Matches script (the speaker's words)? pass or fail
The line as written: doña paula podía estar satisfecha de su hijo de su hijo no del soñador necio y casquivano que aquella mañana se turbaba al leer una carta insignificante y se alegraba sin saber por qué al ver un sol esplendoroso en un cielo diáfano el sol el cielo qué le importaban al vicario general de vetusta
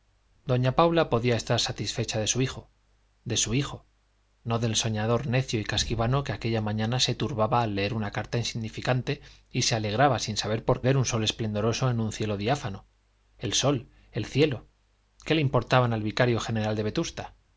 fail